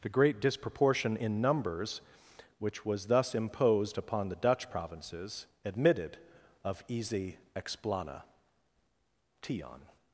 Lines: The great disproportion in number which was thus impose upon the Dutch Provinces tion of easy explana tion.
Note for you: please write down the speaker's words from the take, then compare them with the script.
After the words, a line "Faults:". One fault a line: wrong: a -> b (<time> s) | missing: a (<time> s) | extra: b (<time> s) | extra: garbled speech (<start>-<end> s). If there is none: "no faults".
The great disproportion in numbers which was thus imposed upon the Dutch Provinces admitted of easy explana tion.
Faults:
wrong: number -> numbers (1.4 s)
wrong: impose -> imposed (3.3 s)
wrong: tion -> admitted (5.6 s)